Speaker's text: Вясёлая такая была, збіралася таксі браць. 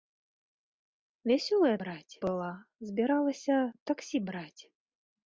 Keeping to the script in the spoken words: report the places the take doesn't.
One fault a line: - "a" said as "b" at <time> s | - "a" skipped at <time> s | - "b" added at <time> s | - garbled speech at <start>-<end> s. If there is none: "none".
- "такая" said as "браць" at 1.8 s